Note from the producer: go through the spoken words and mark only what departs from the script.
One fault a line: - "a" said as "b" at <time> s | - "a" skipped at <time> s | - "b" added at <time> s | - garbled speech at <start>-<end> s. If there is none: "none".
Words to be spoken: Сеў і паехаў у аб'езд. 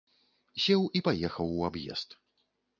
none